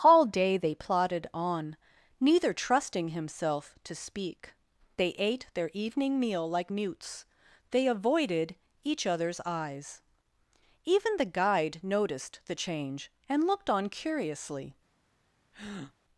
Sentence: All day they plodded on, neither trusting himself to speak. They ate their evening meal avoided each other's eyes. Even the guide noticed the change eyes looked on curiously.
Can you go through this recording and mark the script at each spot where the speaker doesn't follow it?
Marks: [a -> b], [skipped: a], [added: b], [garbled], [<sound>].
All day they plodded on, neither trusting himself to speak. They ate their evening meal [added: like mutes they] avoided each other's eyes. Even the guide noticed the change [eyes -> and] looked on curiously. [breath]